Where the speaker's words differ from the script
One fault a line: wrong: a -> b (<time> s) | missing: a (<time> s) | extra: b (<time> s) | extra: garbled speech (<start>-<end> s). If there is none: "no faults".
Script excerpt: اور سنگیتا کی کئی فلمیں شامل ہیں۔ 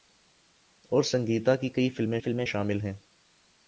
extra: فلمیں (2.2 s)